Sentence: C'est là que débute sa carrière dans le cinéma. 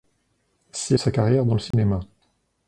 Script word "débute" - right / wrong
wrong